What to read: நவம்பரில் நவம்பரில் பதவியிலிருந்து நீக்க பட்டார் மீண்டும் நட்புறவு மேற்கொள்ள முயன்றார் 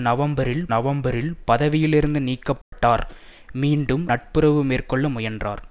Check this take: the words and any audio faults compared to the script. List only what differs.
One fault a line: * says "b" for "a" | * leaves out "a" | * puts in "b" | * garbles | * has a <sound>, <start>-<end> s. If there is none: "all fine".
* has a dropout, 2.6-2.7 s